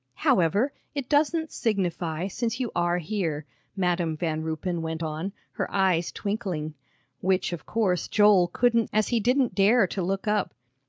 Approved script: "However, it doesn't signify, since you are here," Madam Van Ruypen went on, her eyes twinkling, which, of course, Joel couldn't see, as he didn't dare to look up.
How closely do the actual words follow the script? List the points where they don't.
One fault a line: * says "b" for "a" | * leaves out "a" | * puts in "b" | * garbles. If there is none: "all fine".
* leaves out "see"